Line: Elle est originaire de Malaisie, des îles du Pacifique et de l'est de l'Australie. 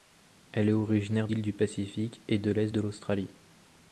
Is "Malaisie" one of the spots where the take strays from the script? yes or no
yes